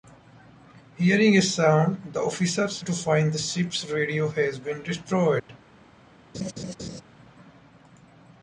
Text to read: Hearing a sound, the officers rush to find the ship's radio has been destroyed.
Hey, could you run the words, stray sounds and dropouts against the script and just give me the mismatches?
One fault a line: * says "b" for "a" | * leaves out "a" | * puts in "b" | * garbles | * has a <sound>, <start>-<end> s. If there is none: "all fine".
* leaves out "rush"
* has a dropout, 5.4-5.5 s
* has a laugh, 6.3-7.0 s